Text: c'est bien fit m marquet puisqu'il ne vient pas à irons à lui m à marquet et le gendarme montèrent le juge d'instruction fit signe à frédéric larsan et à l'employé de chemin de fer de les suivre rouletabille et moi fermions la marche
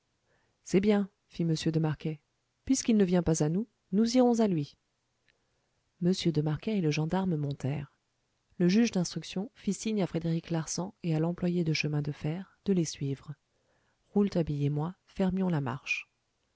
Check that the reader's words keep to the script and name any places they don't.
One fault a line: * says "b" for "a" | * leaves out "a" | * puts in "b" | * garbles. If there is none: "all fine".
* puts in "de"
* puts in "nous nous"
* says "de" for "à"